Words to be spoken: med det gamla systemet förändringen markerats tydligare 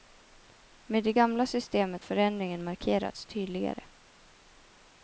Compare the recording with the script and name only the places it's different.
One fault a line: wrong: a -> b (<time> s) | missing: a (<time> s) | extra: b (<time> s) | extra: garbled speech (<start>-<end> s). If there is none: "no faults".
no faults